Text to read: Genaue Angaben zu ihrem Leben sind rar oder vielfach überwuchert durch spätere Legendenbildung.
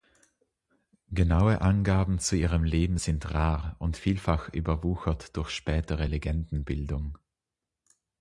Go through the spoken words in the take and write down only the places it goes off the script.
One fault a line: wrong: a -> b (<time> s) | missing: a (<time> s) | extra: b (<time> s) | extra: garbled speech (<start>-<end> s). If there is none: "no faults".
wrong: oder -> und (3.8 s)